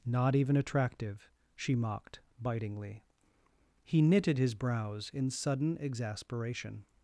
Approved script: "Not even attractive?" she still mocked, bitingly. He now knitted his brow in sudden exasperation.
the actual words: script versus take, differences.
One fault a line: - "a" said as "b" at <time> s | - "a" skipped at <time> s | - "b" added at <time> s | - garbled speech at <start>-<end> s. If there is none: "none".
- "still" skipped at 1.8 s
- "now" skipped at 4.0 s
- "brow" said as "brows" at 4.5 s